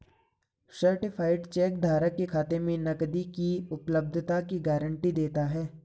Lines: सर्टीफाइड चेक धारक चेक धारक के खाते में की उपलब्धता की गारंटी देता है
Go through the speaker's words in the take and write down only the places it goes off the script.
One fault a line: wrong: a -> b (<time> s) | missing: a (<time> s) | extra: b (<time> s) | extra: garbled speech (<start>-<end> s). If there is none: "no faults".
missing: चेक धारक (2.1 s)
extra: नकदी (2.8 s)